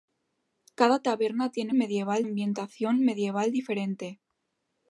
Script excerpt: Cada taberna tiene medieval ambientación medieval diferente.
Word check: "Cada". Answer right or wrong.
right